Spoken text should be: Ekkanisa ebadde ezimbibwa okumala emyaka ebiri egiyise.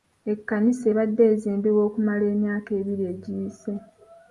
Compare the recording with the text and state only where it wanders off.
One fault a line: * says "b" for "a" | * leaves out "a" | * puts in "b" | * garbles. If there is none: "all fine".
all fine